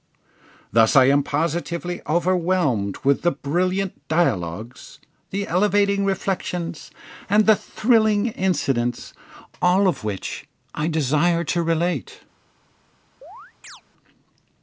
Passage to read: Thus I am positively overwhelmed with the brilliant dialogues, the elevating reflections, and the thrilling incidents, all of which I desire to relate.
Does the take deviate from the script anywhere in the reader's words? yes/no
no